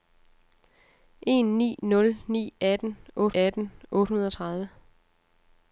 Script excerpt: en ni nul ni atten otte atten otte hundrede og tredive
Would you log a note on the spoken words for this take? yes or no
no